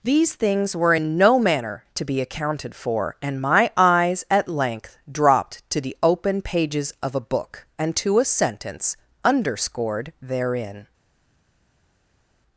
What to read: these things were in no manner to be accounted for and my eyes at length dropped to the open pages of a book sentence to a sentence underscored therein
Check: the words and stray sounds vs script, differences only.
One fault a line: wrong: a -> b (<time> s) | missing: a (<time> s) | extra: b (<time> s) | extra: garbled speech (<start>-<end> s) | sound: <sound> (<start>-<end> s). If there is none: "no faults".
wrong: sentence -> and (7.8 s)